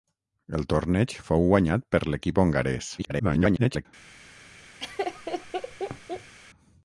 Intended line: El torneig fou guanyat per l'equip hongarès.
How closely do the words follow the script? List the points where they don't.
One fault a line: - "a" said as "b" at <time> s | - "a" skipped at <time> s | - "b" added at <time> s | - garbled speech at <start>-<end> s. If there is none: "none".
- garbled speech at 3.0-3.9 s